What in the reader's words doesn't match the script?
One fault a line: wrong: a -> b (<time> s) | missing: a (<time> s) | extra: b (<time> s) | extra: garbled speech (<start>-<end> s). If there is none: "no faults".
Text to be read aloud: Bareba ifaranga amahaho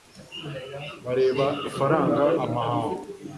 no faults